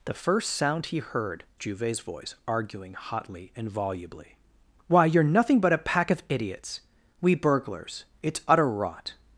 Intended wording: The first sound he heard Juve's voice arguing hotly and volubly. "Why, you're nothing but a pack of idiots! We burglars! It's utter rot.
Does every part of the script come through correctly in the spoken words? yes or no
yes